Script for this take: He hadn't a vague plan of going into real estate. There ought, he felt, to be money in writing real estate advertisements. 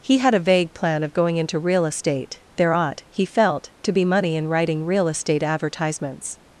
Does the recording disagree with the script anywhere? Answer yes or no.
yes